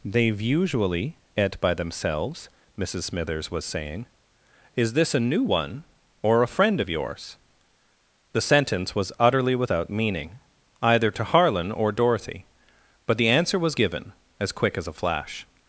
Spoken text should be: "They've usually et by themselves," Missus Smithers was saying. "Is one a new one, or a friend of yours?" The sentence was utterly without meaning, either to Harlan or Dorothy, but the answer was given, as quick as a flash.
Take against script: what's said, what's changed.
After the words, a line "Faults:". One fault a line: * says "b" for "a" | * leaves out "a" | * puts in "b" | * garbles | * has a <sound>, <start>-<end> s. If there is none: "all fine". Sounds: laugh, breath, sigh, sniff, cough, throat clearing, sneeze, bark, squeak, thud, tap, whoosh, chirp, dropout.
"They've usually et by themselves," Missus Smithers was saying. "Is this a new one, or a friend of yours?" The sentence was utterly without meaning, either to Harlan or Dorothy, but the answer was given, as quick as a flash.
Faults:
* says "this" for "one"